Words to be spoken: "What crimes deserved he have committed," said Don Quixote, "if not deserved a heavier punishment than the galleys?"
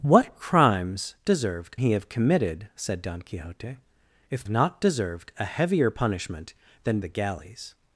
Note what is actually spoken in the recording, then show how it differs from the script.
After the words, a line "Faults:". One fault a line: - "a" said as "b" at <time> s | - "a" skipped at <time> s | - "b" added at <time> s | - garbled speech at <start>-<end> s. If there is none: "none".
"What crimes deserved he have committed," said Don Quixote, "if not deserved a heavier punishment than the galleys?"
Faults:
none